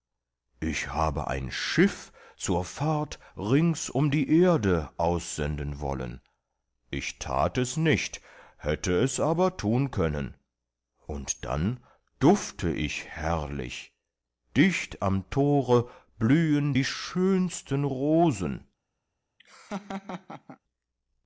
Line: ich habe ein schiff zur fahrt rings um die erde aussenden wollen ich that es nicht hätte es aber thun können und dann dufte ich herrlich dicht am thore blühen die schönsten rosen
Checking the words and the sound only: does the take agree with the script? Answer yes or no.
no